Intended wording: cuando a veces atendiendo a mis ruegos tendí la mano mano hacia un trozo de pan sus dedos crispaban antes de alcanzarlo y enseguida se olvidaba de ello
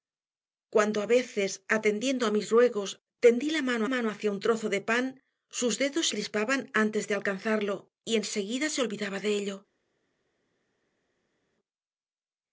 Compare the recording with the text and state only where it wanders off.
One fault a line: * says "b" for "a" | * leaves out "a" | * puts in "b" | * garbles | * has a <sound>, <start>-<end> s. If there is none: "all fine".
all fine